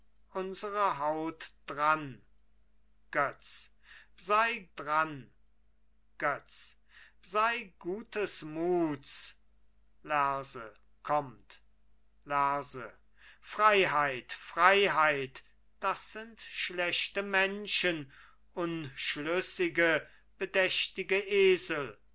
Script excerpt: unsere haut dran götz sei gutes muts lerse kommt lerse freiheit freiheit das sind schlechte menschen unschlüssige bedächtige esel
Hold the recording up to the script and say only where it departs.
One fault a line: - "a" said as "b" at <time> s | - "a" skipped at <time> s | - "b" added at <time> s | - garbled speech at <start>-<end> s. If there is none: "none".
- "dran götz sei" added at 4.8 s